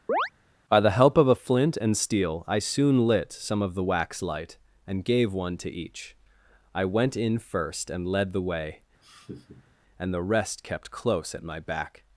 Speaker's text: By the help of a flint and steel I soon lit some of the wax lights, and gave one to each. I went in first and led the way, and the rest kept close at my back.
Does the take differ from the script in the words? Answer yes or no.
yes